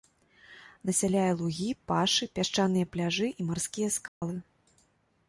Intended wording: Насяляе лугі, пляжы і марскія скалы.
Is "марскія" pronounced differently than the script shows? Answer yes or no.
no